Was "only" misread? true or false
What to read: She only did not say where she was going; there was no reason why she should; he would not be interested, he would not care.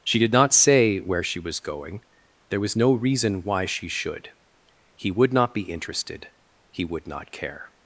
true